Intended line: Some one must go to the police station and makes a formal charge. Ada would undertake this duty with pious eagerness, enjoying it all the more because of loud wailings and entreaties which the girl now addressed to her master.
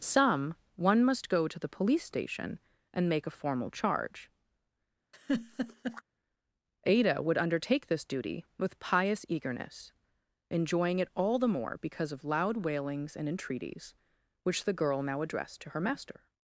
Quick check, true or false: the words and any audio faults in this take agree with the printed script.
false